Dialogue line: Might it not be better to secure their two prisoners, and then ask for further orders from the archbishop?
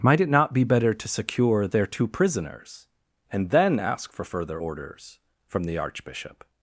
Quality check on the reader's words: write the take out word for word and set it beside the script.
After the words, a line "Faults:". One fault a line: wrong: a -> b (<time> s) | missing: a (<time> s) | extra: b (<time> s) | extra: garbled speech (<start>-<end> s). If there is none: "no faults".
Might it not be better to secure their two prisoners, and then ask for further orders from the archbishop?
Faults:
no faults